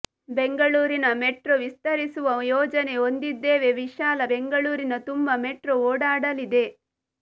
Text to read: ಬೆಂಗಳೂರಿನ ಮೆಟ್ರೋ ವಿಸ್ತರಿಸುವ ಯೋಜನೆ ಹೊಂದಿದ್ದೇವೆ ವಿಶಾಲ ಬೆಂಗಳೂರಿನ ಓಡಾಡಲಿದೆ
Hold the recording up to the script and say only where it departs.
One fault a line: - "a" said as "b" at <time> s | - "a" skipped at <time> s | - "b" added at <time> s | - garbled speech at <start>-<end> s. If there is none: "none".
- "ತುಂಬ ಮೆಟ್ರೋ" added at 5.1 s